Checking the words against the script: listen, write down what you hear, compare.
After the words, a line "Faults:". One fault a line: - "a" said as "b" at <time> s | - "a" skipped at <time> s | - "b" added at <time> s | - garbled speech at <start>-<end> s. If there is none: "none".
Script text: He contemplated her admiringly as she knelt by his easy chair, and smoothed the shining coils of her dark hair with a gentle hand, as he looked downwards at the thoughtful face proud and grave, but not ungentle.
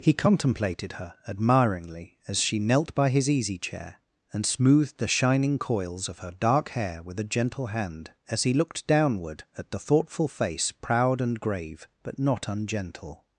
He contemplated her admiringly as she knelt by his easy chair, and smoothed the shining coils of her dark hair with a gentle hand, as he looked downward at the thoughtful face proud and grave, but not ungentle.
Faults:
- "downwards" said as "downward" at 8.9 s